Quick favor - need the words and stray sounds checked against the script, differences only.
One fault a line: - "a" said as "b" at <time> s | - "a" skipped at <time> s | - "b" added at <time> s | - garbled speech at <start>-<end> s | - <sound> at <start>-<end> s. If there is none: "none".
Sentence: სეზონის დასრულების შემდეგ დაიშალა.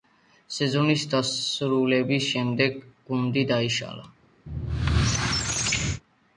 - "გუნდი" added at 3.1 s
- squeak at 4.5-6.0 s